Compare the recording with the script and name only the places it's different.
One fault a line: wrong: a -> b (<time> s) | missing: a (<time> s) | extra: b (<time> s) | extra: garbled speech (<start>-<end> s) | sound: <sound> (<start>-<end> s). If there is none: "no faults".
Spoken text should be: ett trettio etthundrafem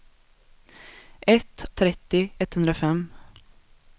no faults